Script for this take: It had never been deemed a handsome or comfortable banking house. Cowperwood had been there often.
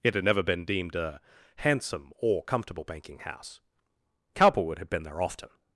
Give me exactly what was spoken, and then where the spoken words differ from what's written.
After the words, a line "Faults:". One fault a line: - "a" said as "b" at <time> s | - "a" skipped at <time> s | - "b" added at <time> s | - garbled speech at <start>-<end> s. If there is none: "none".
It had never been deemed a handsome or comfortable banking house. Cowperwood had been there often.
Faults:
none